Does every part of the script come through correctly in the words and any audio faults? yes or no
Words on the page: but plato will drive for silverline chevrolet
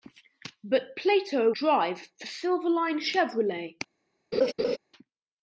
no